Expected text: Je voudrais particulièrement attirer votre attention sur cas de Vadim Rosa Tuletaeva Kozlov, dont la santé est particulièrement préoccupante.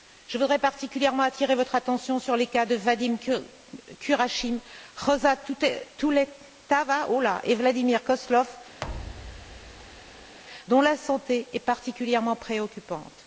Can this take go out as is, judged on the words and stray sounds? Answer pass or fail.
fail